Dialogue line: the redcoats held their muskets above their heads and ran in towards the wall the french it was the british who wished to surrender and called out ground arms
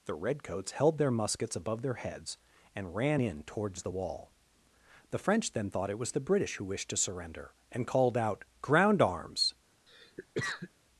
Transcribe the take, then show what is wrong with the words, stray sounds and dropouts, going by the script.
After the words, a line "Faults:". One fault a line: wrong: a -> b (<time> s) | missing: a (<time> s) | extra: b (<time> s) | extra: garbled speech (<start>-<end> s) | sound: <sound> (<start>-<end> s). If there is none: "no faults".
the redcoats held their muskets above their heads and ran in towards the wall the french then thought it was the british who wished to surrender and called out ground arms
Faults:
extra: then thought (5.5 s)
sound: cough (9.9-10.7 s)